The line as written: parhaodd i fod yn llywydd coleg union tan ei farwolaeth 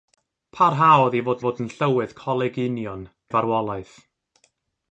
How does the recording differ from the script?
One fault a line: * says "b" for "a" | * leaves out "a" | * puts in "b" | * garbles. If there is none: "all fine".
* puts in "fod"
* leaves out "tan"